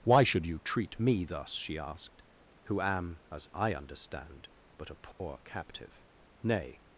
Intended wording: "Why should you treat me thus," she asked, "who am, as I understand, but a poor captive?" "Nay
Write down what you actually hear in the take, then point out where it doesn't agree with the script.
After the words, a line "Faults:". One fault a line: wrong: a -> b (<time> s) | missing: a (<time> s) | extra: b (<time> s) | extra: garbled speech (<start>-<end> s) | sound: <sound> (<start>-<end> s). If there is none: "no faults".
"Why should you treat me thus," she asked, "who am, as I understand, but a poor captive?" "Nay
Faults:
sound: dropout (5.1-5.2 s)